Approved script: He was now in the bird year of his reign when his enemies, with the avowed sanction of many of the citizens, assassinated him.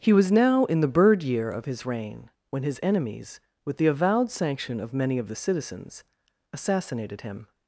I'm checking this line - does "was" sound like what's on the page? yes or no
yes